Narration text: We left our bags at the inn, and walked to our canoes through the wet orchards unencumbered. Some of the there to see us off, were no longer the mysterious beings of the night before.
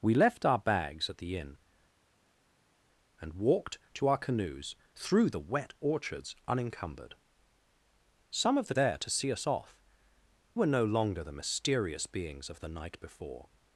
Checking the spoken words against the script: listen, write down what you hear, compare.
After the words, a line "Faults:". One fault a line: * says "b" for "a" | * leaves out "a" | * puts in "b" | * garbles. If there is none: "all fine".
We left our bags at the inn, and walked to our canoes through the wet orchards unencumbered. Some of the there to see us off, were no longer the mysterious beings of the night before.
Faults:
all fine